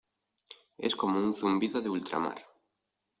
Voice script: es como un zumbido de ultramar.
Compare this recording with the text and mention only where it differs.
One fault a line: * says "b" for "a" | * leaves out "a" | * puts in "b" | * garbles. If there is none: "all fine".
all fine